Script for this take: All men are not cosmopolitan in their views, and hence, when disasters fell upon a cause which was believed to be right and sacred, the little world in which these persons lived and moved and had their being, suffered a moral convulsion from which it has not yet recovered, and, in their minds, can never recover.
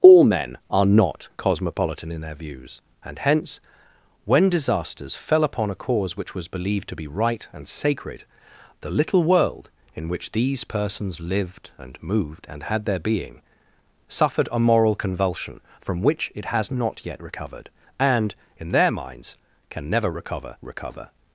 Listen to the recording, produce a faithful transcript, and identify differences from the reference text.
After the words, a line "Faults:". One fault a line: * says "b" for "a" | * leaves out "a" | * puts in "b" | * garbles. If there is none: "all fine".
All men are not cosmopolitan in their views, and hence, when disasters fell upon a cause which was believed to be right and sacred, the little world in which these persons lived and moved and had their being, suffered a moral convulsion from which it has not yet recovered, and, in their minds, can never recover recover.
Faults:
* puts in "recover"